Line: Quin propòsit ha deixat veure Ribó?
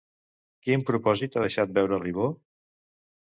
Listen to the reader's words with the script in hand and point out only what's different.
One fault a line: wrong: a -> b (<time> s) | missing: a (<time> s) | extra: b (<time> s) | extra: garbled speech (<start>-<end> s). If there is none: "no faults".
no faults